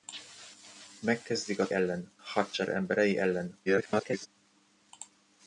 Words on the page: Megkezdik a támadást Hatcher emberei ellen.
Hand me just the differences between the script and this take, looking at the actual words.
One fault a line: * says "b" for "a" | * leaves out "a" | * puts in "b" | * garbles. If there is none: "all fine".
* says "ellen" for "támadást"
* garbles